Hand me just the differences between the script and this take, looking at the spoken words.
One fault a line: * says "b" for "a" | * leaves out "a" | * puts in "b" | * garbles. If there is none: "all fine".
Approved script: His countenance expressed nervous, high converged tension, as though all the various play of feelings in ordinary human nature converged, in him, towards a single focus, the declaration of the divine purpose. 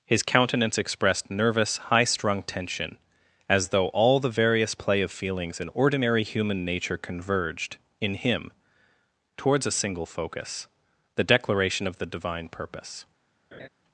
* says "strung" for "converged"